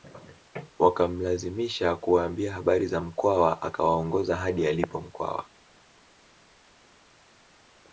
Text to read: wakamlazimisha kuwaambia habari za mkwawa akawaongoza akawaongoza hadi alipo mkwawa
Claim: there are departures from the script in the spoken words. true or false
true